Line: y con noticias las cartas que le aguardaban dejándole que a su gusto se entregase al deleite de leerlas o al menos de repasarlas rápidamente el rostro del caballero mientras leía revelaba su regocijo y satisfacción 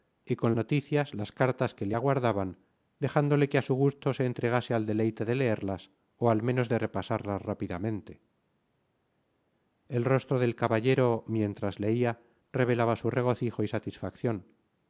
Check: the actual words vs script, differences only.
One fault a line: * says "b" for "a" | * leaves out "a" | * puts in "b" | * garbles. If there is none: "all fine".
all fine